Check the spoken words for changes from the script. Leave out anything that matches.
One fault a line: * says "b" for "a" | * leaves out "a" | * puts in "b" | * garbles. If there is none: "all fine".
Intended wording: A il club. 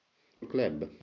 all fine